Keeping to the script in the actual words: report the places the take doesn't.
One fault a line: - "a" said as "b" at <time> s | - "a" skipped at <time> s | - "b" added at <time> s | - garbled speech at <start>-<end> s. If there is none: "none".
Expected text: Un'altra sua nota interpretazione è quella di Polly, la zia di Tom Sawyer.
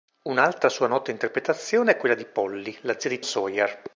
- "Tom" skipped at 3.2 s